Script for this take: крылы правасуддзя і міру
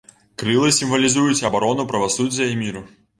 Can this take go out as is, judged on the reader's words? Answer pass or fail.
fail